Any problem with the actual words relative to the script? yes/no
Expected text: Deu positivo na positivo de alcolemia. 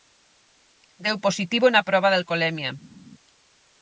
yes